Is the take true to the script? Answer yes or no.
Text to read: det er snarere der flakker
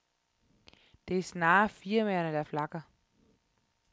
no